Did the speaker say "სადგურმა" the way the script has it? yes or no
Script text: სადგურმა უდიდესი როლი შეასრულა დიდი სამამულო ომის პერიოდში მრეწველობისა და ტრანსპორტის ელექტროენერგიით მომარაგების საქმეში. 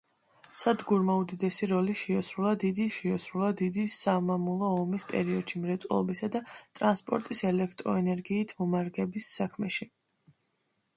yes